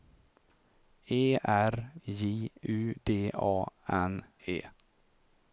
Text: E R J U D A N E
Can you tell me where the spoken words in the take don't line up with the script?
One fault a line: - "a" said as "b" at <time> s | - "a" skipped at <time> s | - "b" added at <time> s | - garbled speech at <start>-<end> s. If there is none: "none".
none